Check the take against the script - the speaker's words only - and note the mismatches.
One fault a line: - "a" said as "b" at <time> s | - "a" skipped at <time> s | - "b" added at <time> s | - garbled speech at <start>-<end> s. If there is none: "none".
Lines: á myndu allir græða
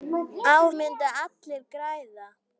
none